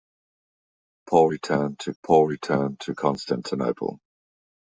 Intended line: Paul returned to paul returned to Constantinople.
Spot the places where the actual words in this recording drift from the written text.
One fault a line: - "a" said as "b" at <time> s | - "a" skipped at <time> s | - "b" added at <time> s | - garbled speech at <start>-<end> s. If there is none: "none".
none